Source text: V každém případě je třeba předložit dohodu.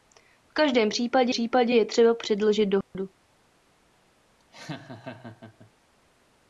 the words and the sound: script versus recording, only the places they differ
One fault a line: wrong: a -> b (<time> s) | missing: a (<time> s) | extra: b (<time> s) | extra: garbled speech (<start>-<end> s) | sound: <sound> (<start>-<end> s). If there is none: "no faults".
extra: případě (1.3 s)
sound: dropout (2.8-2.9 s)
sound: laugh (4.4-5.7 s)